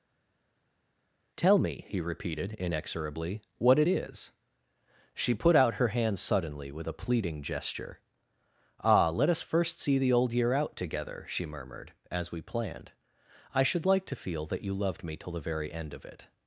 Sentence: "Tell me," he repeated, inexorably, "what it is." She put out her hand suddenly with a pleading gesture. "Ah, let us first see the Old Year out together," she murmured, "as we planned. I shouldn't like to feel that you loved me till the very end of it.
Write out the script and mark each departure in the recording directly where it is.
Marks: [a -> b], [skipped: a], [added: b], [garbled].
"Tell me," he repeated, inexorably, "what it is." She put out her hand suddenly with a pleading gesture. "Ah, let us first see the Old Year out together," she murmured, "as we planned. I [shouldn't -> should] like to feel that you loved me till the very end of it.